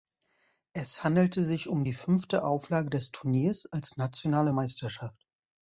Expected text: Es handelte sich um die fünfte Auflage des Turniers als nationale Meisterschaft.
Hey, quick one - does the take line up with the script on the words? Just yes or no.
yes